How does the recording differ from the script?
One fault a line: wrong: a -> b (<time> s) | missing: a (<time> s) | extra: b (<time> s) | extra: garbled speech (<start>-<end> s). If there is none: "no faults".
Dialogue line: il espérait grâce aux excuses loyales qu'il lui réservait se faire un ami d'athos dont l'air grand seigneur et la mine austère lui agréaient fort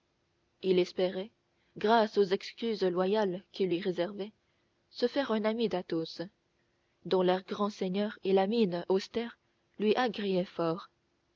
no faults